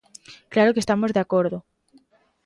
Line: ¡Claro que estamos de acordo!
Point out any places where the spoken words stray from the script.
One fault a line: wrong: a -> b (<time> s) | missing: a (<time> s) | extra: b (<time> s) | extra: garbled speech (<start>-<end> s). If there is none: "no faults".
no faults